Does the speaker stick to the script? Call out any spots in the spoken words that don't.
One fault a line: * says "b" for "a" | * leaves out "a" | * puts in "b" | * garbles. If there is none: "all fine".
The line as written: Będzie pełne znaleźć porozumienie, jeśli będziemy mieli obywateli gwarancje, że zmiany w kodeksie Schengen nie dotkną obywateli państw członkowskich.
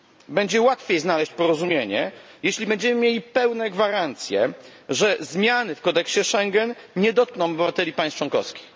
* says "łatwiej" for "pełne"
* says "pełne" for "obywateli"